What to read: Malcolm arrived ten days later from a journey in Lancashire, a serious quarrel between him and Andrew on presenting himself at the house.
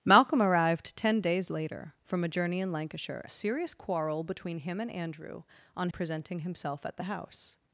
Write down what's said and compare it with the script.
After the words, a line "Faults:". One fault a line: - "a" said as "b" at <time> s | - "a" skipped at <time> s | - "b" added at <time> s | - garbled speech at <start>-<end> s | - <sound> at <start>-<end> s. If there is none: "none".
Malcolm arrived ten days later from a journey in Lancashire, a serious quarrel between him and Andrew on presenting himself at the house.
Faults:
none